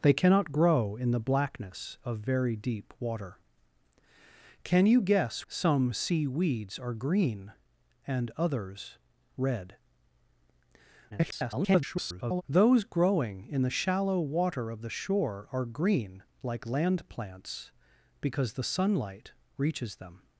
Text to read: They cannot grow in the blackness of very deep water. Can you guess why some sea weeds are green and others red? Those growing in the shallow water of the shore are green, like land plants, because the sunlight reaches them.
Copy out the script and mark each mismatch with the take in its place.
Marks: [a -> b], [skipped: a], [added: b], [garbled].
They cannot grow in the blackness of very deep water. Can you guess [skipped: why] some sea weeds are green and others red? [garbled] Those growing in the shallow water of the shore are green, like land plants, because the sunlight reaches them.